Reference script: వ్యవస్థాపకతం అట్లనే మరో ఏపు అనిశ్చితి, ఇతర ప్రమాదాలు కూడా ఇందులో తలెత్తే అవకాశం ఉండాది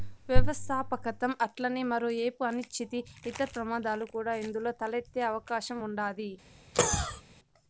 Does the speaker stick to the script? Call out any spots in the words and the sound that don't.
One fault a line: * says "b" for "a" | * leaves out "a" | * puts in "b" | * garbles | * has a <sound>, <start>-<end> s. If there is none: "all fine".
* has a cough, 6.7-7.2 s